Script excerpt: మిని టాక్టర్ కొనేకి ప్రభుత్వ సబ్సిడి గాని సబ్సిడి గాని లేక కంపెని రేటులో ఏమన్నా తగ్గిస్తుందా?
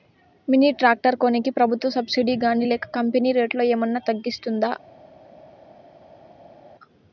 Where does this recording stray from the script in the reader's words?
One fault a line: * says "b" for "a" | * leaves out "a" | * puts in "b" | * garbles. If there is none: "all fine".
* leaves out "సబ్సిడి గాని"